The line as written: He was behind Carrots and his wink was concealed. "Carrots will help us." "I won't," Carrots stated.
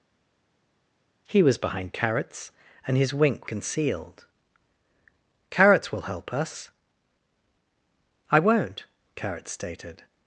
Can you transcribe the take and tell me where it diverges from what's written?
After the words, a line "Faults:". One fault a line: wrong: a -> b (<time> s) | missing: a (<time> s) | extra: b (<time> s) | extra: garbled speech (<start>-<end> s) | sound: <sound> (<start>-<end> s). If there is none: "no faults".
He was behind Carrots and his wink concealed. "Carrots will help us." "I won't," Carrots stated.
Faults:
missing: was (3.5 s)